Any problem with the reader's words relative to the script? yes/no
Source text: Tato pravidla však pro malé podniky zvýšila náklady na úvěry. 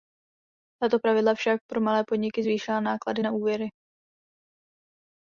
no